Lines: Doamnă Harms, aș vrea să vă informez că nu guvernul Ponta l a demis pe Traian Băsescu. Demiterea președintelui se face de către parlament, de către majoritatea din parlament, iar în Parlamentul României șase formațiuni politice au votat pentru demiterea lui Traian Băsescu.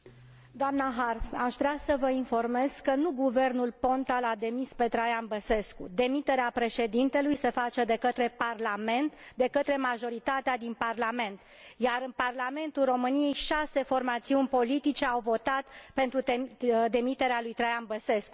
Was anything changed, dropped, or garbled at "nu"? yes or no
no